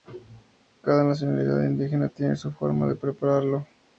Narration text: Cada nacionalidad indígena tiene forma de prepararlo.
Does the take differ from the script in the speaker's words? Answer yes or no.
yes